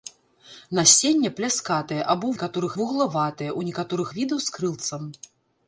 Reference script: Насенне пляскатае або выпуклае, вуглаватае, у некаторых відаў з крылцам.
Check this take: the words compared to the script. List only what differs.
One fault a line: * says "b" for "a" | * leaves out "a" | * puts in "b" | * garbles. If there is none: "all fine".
* says "некаторых" for "выпуклае"